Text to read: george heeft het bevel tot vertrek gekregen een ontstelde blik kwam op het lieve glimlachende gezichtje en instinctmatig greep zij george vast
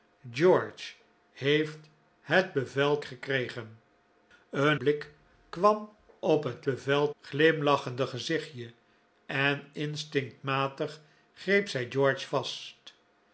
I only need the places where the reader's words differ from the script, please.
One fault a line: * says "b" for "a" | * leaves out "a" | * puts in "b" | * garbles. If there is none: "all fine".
* leaves out "tot vertrek"
* leaves out "ontstelde"
* says "bevel" for "lieve"